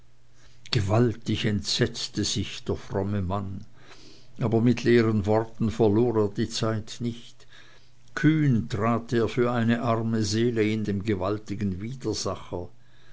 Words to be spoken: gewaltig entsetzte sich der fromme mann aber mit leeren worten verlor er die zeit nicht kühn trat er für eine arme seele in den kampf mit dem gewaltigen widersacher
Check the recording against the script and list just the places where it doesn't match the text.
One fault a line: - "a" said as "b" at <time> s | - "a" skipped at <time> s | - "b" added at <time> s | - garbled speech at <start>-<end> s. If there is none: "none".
- "den kampf mit" skipped at 10.8 s